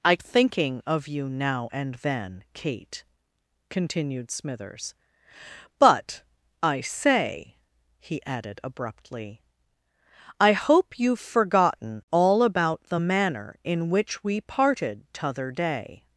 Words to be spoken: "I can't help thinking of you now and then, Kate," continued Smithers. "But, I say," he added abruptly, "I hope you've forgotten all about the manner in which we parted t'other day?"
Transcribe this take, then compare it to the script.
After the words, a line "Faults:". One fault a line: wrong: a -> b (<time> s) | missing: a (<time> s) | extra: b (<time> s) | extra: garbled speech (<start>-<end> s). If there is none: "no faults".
"I thinking of you now and then, Kate," continued Smithers. "But, I say," he added abruptly, "I hope you've forgotten all about the manner in which we parted t'other day?"
Faults:
missing: can't help (0.1 s)